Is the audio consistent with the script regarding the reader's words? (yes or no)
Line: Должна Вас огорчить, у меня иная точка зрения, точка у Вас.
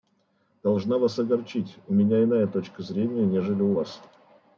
no